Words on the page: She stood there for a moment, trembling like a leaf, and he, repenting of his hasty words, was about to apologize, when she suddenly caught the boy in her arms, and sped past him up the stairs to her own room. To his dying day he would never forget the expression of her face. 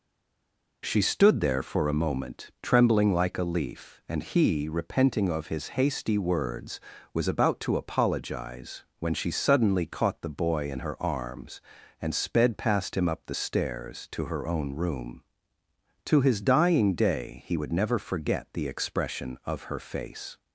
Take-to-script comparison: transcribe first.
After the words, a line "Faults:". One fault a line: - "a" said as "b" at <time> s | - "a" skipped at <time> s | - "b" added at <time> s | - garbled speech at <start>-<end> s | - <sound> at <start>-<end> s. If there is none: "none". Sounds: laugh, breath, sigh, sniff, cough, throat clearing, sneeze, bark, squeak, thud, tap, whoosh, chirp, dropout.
She stood there for a moment, trembling like a leaf, and he, repenting of his hasty words, was about to apologize, when she suddenly caught the boy in her arms, and sped past him up the stairs to her own room. To his dying day he would never forget the expression of her face.
Faults:
none